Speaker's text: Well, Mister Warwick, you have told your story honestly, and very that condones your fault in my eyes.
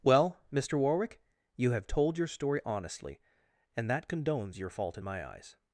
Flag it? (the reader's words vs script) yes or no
yes